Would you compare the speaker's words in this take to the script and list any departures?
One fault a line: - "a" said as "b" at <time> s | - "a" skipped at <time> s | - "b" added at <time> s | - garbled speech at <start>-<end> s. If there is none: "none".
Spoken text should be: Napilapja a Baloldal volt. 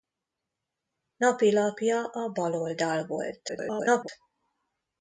- garbled speech at 3.5-4.1 s